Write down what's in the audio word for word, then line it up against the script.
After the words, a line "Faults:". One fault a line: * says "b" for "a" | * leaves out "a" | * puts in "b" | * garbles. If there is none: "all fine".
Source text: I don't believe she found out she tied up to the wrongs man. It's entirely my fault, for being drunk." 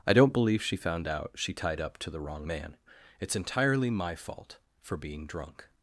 I don't believe she found out she tied up to the wrong man. It's entirely my fault, for being drunk."
Faults:
* says "wrong" for "wrongs"